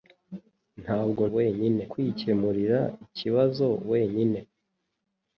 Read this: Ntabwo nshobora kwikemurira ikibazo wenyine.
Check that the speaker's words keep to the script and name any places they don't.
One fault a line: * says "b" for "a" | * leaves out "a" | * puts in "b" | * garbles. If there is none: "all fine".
* says "wenyine" for "nshobora"